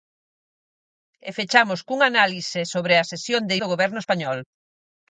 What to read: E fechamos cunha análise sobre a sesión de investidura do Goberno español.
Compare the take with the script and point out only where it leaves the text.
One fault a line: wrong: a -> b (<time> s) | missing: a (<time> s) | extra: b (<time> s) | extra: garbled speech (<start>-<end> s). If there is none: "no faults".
missing: investidura (3.5 s)